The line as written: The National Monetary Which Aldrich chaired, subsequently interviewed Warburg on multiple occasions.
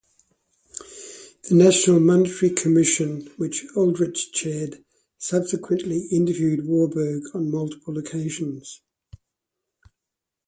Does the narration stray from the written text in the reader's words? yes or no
yes